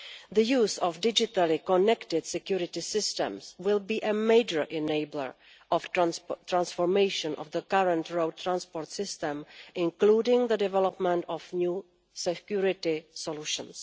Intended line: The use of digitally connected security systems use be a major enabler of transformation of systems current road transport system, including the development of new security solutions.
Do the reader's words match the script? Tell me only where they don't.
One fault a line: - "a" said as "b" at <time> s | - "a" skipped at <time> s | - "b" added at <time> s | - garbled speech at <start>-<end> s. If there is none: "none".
- "use" said as "will" at 3.6 s
- "the" added at 5.9 s
- "systems" said as "the" at 7.5 s